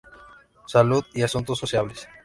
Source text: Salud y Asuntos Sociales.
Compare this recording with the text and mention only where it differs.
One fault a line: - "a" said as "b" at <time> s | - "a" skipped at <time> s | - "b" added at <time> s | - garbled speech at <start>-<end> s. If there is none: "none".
none